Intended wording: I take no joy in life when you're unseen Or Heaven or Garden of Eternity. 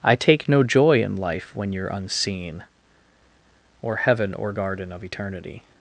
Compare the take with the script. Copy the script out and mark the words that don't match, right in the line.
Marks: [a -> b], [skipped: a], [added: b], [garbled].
I take no joy in life when you're unseen Or Heaven or Garden of Eternity.